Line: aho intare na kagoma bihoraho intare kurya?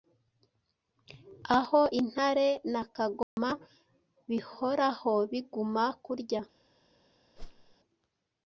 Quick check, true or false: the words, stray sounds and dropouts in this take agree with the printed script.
false